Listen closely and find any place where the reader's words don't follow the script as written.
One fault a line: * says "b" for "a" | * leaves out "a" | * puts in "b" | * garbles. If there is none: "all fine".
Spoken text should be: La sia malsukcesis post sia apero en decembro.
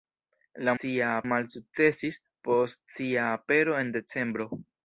all fine